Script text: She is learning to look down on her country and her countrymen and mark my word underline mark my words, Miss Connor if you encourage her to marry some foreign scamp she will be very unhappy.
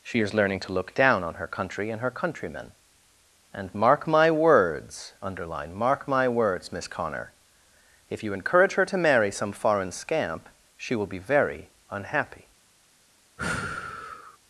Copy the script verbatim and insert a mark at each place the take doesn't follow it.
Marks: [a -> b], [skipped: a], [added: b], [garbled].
She is learning to look down on her country and her countrymen and mark my [word -> words] underline mark my words, Miss Connor if you encourage her to marry some foreign scamp she will be very unhappy.